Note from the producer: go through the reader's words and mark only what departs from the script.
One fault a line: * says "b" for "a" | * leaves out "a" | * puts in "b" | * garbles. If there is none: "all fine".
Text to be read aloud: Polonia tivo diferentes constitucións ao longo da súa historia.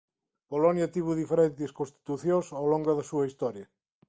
all fine